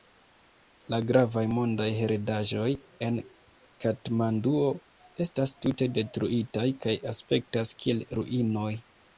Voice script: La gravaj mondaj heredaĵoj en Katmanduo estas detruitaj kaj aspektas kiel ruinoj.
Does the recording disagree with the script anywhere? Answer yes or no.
yes